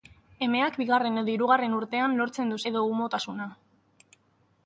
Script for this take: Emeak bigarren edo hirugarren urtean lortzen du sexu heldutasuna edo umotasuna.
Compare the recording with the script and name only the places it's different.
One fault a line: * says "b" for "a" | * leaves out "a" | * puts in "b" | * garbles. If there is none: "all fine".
* leaves out "sexu heldutasuna"